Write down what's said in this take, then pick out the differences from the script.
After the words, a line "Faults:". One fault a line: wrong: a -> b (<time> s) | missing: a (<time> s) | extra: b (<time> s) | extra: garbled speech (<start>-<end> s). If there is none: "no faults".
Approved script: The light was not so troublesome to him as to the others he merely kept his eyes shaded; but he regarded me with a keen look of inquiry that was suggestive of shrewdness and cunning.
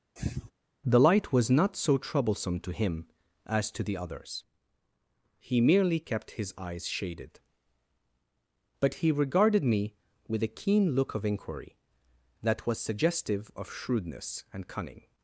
The light was not so troublesome to him as to the others he merely kept his eyes shaded; but he regarded me with a keen look of inquiry that was suggestive of shrewdness and cunning.
Faults:
no faults